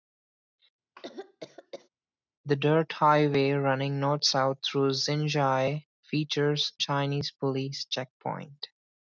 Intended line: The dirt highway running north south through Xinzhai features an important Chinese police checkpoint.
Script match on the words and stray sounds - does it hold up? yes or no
no